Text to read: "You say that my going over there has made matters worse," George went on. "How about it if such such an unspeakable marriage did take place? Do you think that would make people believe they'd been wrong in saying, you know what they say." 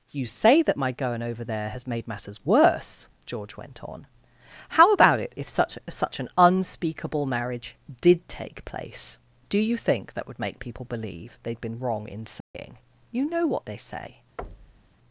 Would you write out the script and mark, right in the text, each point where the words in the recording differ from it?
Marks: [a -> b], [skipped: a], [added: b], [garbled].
"You say that my going over there has made matters worse," George went on. "How about it if such such an unspeakable marriage did take place? Do you think that would make people believe they'd been wrong in saying, you know what they say."